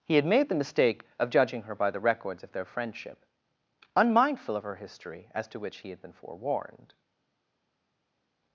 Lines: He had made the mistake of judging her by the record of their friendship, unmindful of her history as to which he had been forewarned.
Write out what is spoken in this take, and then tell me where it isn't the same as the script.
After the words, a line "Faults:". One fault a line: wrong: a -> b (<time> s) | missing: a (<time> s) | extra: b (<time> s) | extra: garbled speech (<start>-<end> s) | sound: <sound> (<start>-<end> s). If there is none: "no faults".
He had made the mistake of judging her by the records of their friendship, unmindful of her history as to which he had been forewarned.
Faults:
wrong: record -> records (2.0 s)